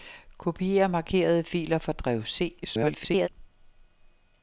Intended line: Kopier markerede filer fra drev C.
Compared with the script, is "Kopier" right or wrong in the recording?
right